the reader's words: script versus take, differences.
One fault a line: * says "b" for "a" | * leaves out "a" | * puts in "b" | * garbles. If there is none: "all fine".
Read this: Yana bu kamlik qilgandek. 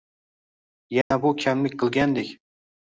all fine